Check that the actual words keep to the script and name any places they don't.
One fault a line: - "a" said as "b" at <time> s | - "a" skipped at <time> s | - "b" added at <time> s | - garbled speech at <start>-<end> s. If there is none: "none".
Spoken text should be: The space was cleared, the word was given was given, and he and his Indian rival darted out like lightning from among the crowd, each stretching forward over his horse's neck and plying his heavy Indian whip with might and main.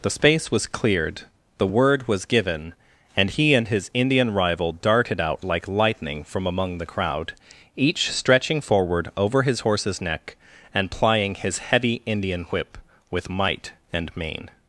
- "was given" skipped at 2.7 s